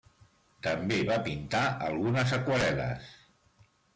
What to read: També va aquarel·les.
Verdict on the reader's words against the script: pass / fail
fail